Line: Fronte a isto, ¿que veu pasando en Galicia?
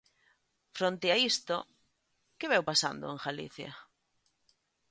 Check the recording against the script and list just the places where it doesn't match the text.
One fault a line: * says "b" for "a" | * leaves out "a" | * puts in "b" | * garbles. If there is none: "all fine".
all fine